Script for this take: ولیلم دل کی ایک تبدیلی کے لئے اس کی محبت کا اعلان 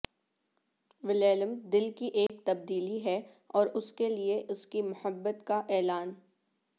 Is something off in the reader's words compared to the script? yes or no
yes